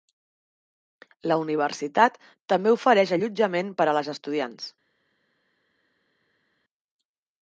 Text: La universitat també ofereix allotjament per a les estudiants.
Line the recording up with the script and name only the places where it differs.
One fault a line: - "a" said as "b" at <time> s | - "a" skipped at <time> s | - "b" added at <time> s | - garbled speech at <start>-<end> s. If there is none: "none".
none